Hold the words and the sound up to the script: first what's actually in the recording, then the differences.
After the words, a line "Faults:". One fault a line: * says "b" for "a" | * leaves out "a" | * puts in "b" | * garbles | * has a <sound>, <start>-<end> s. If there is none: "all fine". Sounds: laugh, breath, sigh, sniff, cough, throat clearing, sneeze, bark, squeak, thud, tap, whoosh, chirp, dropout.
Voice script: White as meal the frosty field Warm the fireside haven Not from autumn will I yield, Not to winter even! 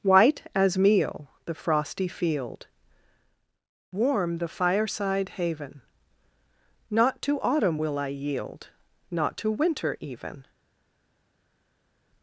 White as meal the frosty field Warm the fireside haven Not to autumn will I yield, Not to winter even!
Faults:
* says "to" for "from"